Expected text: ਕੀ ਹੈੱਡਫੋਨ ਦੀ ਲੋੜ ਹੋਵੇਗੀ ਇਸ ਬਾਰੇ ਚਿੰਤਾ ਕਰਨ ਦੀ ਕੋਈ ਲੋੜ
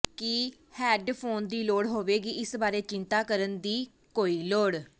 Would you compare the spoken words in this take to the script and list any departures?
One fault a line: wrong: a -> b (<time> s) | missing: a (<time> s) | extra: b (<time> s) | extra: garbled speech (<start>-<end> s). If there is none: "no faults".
no faults